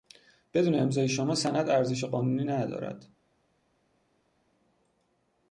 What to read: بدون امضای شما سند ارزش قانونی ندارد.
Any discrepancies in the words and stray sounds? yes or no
no